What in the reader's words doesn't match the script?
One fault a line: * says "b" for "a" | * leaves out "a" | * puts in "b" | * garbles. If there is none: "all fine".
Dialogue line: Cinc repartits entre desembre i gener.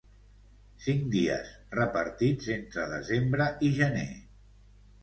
* puts in "dies"